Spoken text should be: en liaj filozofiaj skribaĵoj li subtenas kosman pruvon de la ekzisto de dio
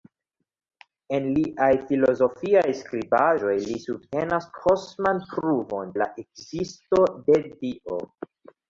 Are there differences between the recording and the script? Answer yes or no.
yes